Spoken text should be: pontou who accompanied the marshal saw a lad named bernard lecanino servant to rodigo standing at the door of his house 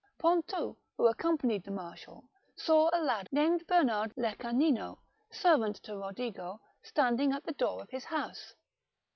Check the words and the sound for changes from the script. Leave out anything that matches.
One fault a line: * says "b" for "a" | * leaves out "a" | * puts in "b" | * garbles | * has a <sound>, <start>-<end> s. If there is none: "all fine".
all fine